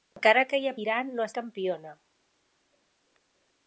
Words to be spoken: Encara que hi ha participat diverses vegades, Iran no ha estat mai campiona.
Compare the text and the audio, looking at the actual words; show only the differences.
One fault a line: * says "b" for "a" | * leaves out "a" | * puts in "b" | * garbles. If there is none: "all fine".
* leaves out "participat diverses vegades"
* leaves out "estat mai"